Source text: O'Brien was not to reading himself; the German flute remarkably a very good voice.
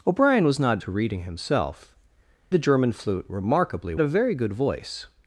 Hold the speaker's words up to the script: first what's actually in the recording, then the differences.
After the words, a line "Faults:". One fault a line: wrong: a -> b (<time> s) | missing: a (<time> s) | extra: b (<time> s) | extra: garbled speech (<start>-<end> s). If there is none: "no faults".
O'Brien was not to reading himself; the German flute remarkably a very good voice.
Faults:
no faults